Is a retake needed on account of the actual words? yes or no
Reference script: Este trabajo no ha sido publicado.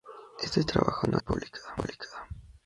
yes